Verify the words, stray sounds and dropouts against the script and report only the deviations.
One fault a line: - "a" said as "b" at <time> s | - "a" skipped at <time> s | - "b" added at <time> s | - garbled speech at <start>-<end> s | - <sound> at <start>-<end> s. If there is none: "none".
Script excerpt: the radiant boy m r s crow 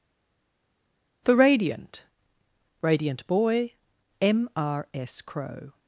- "radiant" added at 2.8 s